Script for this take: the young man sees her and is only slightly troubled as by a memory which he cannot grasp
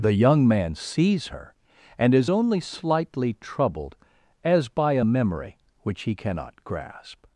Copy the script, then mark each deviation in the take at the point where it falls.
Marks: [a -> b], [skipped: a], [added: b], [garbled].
the young man sees her and is only slightly troubled as by a memory which he cannot grasp